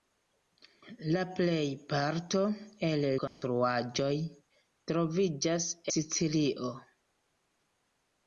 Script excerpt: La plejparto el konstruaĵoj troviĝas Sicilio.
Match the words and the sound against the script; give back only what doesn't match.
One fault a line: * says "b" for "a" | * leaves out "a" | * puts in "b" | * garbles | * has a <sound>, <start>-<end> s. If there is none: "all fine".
* has a dropout, 3.3-3.4 s